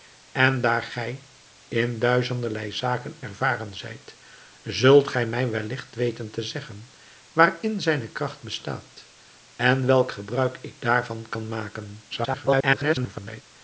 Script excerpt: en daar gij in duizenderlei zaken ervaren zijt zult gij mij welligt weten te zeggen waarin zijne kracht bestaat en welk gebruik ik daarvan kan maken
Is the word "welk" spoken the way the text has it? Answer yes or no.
yes